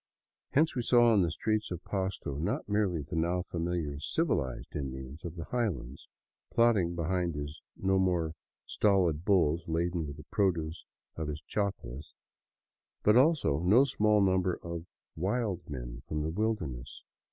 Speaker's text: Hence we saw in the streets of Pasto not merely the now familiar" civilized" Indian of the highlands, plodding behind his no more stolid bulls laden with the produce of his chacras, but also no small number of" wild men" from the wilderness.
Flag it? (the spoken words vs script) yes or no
no